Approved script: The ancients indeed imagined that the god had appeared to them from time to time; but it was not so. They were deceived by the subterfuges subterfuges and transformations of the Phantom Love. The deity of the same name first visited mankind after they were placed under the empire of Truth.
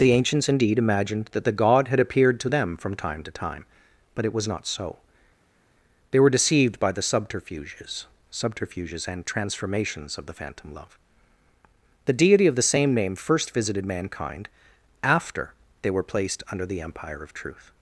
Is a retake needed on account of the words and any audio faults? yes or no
no